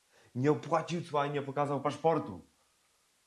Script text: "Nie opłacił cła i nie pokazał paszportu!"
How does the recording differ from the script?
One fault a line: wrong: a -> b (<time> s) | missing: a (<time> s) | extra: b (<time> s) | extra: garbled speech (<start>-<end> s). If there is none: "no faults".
no faults